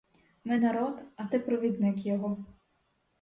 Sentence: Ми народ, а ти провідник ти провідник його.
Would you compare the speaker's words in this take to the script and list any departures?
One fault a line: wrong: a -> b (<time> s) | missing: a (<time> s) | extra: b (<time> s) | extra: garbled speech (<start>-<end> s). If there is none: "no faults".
missing: ти провідник (2.0 s)